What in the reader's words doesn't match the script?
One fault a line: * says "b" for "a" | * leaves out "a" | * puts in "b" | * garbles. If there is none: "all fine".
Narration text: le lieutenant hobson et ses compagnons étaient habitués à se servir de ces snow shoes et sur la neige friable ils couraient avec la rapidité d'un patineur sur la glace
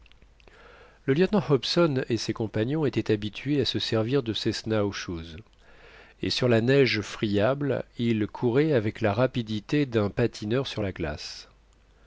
all fine